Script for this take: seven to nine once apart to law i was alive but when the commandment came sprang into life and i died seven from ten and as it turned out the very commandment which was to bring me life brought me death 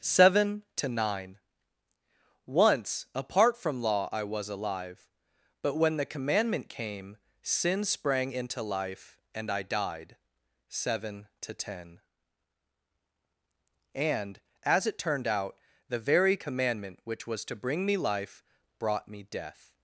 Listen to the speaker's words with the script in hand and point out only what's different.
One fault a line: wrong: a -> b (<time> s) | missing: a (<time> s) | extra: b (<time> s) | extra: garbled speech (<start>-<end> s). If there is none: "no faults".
wrong: to -> from (3.5 s)
extra: sin (7.4 s)
wrong: from -> to (11.4 s)